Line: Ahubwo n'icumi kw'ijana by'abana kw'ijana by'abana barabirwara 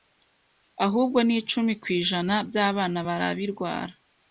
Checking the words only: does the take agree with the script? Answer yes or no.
no